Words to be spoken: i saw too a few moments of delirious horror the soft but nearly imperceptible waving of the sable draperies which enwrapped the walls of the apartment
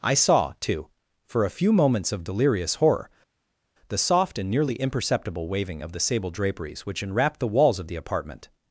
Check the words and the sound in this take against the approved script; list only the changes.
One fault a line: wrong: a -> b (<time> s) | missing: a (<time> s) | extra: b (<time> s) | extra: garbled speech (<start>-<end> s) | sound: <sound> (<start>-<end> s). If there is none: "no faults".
extra: for (1.3 s)
wrong: but -> and (4.4 s)